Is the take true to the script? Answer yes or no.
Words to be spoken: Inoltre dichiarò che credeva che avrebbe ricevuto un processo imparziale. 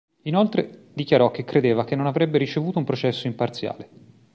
no